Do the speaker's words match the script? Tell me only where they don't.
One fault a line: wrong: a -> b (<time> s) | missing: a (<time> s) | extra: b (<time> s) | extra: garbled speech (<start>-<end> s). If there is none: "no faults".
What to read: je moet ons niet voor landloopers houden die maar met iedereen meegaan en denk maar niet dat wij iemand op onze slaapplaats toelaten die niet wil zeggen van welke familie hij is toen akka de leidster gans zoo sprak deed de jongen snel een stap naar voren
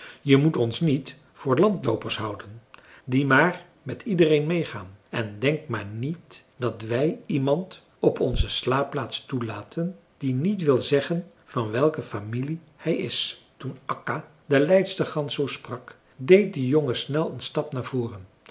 no faults